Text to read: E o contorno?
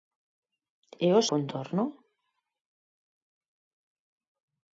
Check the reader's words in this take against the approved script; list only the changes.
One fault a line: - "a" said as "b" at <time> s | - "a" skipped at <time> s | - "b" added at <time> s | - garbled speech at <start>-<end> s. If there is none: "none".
none